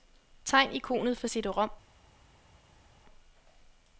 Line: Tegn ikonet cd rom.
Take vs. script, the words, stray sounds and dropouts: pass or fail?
fail